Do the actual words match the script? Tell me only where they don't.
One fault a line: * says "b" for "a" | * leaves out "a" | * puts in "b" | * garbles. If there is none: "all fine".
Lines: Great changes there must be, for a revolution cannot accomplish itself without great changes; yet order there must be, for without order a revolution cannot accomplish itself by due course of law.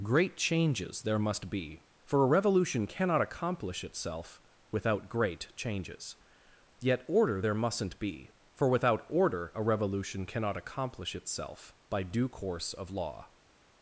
* says "mustn't" for "must"